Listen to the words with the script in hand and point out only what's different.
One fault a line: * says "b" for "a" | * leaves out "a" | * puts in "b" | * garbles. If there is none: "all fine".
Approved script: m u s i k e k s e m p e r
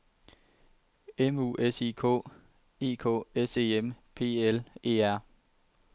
* puts in "l"